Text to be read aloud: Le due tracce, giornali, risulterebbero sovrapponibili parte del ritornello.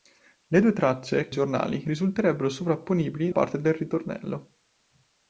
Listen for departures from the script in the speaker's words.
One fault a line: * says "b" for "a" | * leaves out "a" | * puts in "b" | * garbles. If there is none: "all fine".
all fine